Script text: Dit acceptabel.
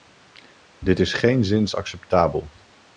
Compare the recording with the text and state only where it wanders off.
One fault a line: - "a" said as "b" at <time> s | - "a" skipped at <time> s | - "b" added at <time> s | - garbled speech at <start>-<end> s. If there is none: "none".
- "is geenszins" added at 1.0 s